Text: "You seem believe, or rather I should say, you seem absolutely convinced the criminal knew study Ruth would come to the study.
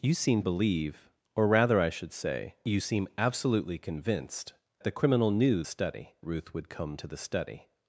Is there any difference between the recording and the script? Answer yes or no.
no